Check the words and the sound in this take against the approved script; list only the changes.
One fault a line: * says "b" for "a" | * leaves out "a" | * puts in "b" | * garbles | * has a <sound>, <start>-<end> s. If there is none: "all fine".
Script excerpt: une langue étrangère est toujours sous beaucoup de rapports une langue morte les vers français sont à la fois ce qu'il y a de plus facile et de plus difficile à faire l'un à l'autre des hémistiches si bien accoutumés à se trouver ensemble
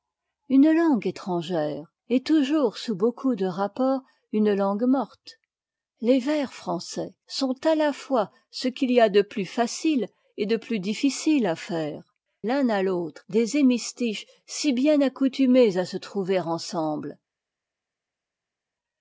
all fine